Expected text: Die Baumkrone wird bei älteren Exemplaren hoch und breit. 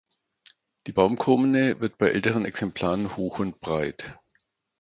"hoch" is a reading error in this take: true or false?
false